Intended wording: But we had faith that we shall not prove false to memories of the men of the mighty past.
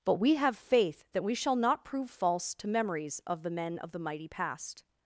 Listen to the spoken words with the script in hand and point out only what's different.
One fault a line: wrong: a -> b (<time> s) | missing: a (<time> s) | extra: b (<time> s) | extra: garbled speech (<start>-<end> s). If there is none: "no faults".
wrong: had -> have (0.3 s)